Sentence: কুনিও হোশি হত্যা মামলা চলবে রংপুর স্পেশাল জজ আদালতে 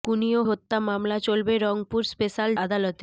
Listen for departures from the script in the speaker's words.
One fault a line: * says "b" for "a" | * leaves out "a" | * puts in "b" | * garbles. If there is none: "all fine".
* leaves out "হোশি"
* leaves out "জজ"